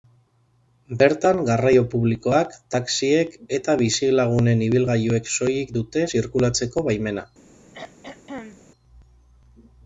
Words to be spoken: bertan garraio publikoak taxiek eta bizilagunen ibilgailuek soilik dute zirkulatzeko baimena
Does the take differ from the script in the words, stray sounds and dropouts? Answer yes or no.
yes